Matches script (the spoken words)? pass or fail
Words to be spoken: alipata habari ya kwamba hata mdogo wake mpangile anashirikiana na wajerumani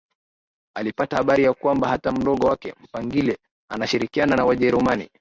pass